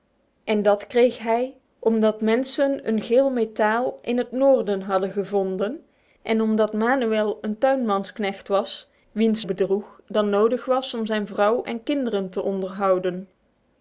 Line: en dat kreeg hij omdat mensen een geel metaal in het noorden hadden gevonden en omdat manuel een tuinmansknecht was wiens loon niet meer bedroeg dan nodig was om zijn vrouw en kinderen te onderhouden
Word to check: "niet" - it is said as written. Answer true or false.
false